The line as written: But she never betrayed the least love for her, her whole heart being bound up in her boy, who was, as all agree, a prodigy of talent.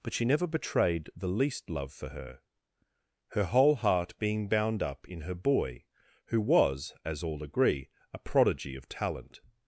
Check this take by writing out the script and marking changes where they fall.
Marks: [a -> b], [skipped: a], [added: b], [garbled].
But she never betrayed the least love for her, her whole heart being bound up in her boy, who was, as all agree, a prodigy of talent.